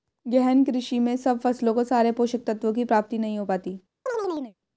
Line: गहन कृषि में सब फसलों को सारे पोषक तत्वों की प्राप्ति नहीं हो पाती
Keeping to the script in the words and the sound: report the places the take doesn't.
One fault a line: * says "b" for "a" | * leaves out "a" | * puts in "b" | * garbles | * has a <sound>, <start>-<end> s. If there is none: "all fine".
* has a chirp, 4.1-4.5 s